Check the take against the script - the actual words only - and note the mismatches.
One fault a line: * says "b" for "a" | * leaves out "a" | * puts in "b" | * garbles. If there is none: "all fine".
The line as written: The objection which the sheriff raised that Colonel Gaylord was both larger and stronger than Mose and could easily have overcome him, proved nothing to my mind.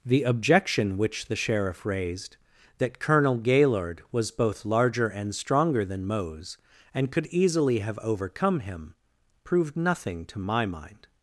all fine